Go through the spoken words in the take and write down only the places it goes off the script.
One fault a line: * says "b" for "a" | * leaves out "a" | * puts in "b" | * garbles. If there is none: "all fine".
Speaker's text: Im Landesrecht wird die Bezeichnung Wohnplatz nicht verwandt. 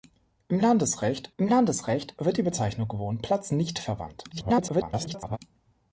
* puts in "im Landesrecht"
* garbles